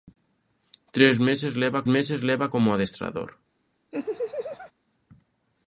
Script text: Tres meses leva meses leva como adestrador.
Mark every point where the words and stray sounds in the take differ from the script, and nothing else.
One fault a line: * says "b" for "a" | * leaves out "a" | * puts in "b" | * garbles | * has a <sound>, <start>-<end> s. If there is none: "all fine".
* has a laugh, 3.9-4.7 s